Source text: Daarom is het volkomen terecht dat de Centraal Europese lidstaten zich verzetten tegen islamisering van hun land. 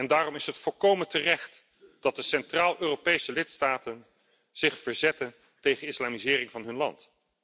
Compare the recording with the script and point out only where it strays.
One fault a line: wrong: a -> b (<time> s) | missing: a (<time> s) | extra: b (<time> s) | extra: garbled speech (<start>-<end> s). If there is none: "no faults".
no faults